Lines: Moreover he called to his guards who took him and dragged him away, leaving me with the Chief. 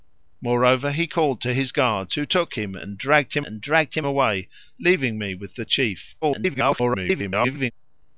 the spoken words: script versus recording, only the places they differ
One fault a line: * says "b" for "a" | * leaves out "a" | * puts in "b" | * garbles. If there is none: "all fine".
* puts in "and dragged him"
* garbles